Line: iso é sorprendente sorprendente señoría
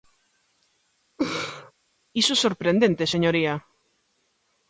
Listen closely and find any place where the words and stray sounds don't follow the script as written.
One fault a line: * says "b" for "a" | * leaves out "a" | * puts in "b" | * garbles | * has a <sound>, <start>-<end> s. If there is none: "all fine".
* has a laugh, 1.2-1.7 s
* leaves out "sorprendente"